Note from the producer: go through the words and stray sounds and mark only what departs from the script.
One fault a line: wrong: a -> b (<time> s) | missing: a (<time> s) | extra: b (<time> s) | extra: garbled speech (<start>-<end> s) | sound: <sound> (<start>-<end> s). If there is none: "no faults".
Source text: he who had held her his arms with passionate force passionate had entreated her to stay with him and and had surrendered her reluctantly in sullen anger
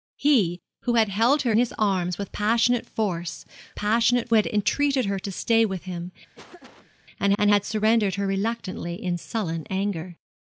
sound: laugh (6.3-6.9 s)